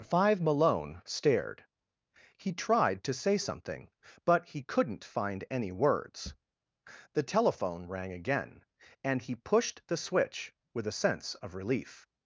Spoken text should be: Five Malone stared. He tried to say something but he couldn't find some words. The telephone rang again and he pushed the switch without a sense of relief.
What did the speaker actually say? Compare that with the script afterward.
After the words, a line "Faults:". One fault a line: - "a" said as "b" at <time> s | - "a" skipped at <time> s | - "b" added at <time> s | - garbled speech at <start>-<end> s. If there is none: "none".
Five Malone stared. He tried to say something but he couldn't find any words. The telephone rang again and he pushed the switch with a sense of relief.
Faults:
- "some" said as "any" at 5.5 s
- "without" said as "with" at 10.7 s